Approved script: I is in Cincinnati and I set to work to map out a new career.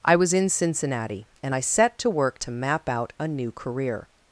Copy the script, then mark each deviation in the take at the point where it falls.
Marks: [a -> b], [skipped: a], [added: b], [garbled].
I [is -> was] in Cincinnati and I set to work to map out a new career.